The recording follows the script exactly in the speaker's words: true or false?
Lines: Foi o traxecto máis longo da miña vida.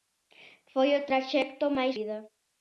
false